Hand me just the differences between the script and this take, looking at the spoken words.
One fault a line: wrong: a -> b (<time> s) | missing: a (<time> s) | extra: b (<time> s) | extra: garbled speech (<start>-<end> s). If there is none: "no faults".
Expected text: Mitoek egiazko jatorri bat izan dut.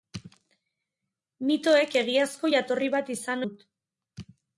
no faults